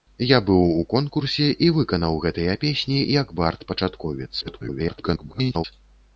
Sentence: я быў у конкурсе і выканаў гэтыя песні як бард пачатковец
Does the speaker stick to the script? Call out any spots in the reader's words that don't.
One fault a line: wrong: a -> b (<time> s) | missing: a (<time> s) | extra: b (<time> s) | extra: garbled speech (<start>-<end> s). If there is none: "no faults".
extra: garbled speech (4.4-5.6 s)